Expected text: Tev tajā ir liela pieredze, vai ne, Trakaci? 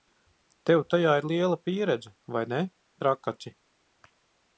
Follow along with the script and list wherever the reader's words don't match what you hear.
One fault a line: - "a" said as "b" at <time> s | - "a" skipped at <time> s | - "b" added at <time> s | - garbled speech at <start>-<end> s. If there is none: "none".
none